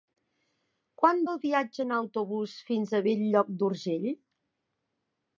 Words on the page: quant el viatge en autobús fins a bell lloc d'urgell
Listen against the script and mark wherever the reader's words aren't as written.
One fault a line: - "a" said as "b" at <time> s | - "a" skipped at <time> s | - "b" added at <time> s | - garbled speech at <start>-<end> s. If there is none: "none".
none